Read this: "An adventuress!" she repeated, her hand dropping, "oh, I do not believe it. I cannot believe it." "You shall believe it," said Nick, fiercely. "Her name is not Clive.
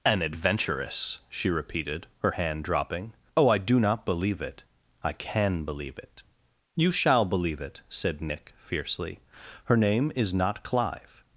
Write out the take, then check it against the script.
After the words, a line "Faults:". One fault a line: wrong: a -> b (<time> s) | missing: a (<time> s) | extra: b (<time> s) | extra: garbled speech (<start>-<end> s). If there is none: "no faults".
"An adventuress!" she repeated, her hand dropping, "oh, I do not believe it. I can believe it." "You shall believe it," said Nick, fiercely. "Her name is not Clive.
Faults:
wrong: cannot -> can (5.1 s)